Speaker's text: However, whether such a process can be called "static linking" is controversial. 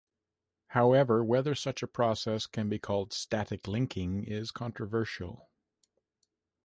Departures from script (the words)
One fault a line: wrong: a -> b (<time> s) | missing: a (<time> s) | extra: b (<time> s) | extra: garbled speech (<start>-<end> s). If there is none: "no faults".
no faults